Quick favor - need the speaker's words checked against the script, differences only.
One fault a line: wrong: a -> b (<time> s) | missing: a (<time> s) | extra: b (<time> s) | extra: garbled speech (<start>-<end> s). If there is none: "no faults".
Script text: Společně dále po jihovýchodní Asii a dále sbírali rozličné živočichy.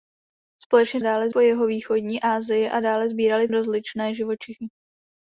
no faults